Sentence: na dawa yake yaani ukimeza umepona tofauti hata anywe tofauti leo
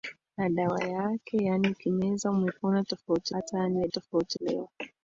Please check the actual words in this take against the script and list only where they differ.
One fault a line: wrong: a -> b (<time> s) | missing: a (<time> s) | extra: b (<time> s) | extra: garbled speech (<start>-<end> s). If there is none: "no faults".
no faults